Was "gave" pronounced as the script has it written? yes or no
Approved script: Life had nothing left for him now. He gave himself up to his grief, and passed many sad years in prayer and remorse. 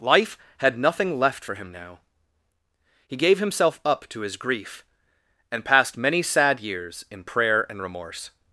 yes